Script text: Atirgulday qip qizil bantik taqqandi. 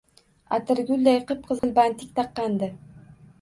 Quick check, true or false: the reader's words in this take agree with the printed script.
true